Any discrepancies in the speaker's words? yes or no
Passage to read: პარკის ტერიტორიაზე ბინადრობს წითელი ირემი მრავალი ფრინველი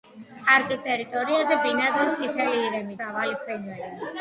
no